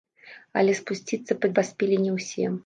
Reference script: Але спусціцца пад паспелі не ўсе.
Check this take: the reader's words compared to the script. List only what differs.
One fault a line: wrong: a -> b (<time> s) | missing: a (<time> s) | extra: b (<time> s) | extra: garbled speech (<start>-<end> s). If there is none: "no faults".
no faults